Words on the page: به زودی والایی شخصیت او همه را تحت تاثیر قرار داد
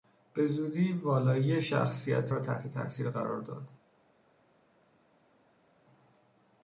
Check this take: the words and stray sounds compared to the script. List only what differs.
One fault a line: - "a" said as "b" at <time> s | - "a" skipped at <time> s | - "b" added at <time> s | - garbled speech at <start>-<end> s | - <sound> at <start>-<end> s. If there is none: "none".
- "او همه" skipped at 2.3 s